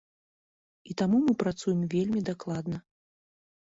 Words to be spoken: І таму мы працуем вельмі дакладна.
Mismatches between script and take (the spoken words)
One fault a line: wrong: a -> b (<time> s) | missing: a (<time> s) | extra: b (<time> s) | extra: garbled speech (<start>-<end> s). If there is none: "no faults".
no faults